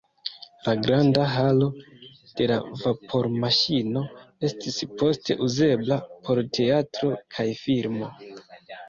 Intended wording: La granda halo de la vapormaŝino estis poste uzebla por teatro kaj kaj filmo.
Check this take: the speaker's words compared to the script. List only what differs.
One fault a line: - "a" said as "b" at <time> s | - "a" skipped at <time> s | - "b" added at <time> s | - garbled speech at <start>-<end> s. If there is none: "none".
- "kaj" skipped at 7.5 s